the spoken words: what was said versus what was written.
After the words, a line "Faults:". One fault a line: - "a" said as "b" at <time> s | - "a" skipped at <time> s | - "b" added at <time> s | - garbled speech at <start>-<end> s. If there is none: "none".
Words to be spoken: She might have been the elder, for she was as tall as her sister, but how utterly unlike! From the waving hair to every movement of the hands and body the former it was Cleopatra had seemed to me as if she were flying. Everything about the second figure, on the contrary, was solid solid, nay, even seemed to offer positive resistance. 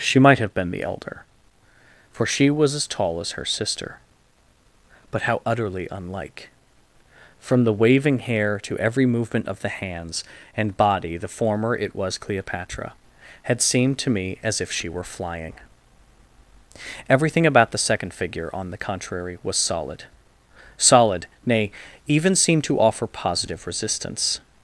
She might have been the elder, for she was as tall as her sister, but how utterly unlike! From the waving hair to every movement of the hands and body the former it was Cleopatra had seemed to me as if she were flying. Everything about the second figure, on the contrary, was solid solid, nay, even seemed to offer positive resistance.
Faults:
none